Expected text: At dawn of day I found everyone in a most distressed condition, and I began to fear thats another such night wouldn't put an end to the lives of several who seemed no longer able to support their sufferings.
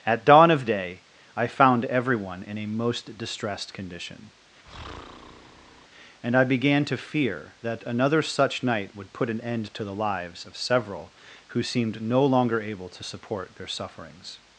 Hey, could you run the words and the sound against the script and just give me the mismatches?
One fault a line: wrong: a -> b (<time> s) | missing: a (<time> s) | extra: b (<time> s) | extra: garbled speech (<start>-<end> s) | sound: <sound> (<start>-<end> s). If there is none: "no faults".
sound: breath (4.6-5.9 s)
wrong: thats -> that (7.6 s)
wrong: wouldn't -> would (8.9 s)